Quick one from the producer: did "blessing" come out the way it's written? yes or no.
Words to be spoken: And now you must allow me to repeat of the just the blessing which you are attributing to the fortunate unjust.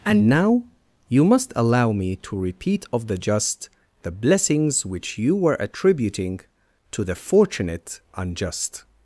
no